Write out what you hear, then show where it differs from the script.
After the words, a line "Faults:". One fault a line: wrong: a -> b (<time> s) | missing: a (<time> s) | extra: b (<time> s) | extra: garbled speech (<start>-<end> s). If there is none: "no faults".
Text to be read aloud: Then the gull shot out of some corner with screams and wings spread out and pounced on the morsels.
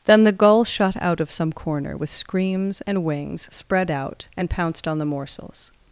Then the gull shot out of some corner with screams and wings spread out and pounced on the morsels.
Faults:
no faults